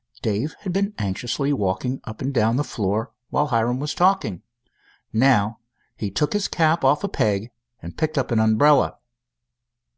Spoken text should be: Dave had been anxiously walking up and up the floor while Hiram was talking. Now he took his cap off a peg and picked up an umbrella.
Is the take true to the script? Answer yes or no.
no